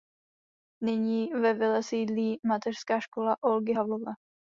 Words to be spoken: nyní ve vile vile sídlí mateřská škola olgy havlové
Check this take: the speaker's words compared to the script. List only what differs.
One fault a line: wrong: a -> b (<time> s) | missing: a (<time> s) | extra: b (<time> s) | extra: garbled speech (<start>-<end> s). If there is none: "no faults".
missing: vile (1.8 s)